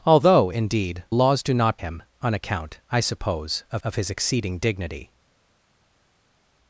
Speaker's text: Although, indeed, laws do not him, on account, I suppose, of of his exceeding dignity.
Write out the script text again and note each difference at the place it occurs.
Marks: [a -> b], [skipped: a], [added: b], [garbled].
Although, indeed, laws do not him, on account, I suppose, of of his exceeding dignity.